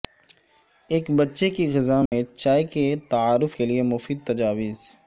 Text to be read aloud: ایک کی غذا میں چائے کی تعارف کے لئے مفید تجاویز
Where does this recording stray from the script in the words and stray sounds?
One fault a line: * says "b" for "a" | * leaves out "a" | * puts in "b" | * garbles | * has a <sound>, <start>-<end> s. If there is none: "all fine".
* puts in "بچے"
* has a dropout, 2.1-2.1 s
* says "کے" for "کی"